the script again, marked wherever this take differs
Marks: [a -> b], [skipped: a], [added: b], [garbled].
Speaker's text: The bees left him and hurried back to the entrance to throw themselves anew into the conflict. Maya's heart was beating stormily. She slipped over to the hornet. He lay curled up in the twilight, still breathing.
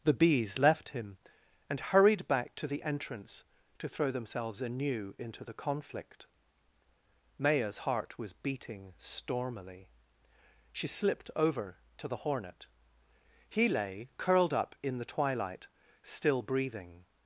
The bees left him and hurried back to the entrance to throw themselves anew into the conflict. Maya's heart was beating stormily. She slipped over to the hornet. He lay curled up in the twilight, still breathing.